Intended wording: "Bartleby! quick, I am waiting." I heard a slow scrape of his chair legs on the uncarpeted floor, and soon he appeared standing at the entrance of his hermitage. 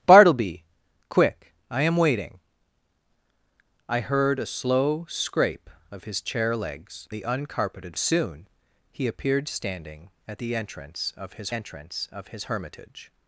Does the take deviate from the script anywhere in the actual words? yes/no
yes